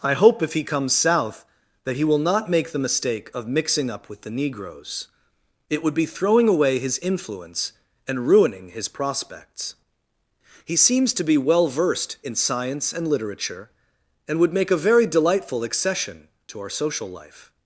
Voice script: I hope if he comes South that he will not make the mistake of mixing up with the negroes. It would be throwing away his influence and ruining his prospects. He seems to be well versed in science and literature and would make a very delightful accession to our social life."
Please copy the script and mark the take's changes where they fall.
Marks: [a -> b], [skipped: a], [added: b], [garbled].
I hope if he comes South that he will not make the mistake of mixing up with the negroes. It would be throwing away his influence and ruining his prospects. He seems to be well versed in science and literature and would make a very delightful accession to our social life."